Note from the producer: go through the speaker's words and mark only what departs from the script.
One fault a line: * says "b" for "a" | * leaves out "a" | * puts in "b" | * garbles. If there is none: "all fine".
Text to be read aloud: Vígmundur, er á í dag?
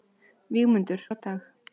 all fine